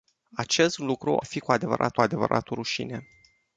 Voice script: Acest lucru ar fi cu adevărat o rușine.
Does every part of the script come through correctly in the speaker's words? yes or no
no